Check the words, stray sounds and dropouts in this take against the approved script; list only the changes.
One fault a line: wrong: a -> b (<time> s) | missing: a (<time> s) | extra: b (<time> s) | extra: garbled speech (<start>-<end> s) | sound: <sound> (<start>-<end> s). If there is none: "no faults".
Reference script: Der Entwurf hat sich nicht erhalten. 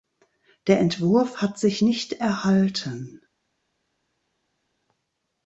no faults